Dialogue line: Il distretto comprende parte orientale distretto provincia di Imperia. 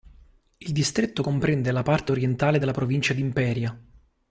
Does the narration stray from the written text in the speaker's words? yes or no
yes